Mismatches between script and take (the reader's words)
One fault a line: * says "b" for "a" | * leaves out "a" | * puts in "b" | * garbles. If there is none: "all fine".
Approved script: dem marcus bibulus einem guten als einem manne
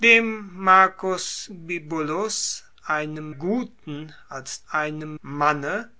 all fine